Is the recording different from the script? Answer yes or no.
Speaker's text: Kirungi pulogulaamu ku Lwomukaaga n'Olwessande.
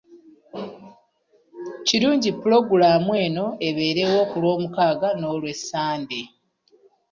yes